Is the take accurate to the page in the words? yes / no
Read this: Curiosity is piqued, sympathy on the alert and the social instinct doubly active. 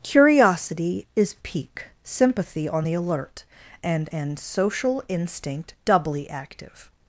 no